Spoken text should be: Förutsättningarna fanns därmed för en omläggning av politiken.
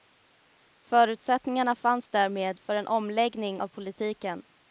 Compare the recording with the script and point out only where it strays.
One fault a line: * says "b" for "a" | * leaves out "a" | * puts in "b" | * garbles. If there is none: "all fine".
all fine